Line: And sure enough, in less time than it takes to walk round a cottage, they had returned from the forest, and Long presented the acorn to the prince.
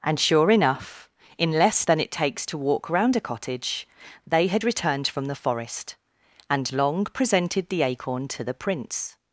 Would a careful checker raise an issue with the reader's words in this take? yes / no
yes